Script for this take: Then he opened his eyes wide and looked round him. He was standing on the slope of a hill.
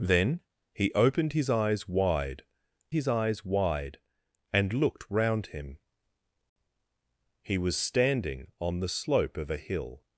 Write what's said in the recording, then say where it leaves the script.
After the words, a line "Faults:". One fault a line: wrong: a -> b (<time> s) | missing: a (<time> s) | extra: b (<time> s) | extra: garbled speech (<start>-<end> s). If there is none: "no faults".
Then he opened his eyes wide his eyes wide and looked round him. He was standing on the slope of a hill.
Faults:
extra: his eyes wide (2.9 s)